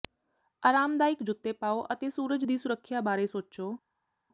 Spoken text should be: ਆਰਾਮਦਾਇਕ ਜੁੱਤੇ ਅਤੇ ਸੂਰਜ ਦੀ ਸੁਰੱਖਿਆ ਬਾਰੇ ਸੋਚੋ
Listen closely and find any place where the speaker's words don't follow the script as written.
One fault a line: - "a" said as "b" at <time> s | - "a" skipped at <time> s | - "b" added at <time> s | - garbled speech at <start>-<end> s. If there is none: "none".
- "ਪਾਓ" added at 1.5 s